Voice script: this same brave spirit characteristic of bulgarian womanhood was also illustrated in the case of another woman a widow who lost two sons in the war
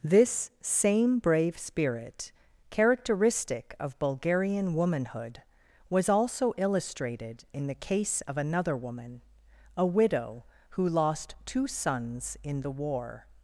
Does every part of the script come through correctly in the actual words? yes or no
yes